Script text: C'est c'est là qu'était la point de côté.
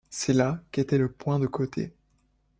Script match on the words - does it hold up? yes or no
no